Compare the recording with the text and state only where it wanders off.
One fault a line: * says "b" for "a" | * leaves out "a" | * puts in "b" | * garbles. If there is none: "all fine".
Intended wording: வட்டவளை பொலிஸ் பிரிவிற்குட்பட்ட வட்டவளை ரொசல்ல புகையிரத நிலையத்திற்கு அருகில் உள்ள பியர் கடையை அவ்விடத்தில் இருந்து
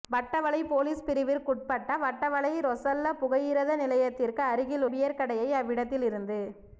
* leaves out "உள்ள"